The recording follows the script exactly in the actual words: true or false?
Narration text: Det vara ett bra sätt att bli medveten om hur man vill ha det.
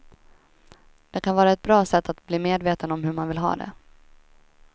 false